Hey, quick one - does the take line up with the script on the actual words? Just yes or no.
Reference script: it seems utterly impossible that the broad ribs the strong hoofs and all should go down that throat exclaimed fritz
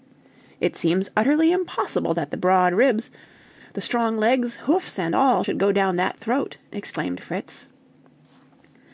no